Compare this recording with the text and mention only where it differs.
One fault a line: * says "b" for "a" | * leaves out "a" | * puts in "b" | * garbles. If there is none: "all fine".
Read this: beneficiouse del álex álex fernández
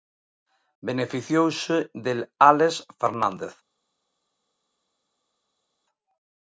* leaves out "álex"